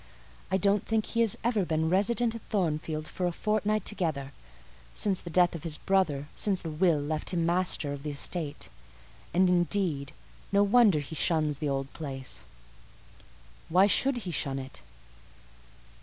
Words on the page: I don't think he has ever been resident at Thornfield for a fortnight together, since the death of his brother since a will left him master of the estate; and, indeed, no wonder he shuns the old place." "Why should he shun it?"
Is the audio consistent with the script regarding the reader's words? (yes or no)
yes